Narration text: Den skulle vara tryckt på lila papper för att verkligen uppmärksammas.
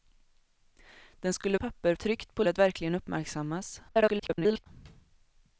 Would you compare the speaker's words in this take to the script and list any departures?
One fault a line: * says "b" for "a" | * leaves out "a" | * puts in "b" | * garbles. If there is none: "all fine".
* says "papper" for "vara"
* leaves out "lila papper för"
* garbles